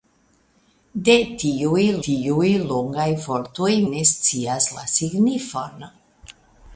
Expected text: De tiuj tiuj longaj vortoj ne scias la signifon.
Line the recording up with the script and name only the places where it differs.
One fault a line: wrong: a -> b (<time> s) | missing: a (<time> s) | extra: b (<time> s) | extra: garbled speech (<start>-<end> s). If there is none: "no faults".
no faults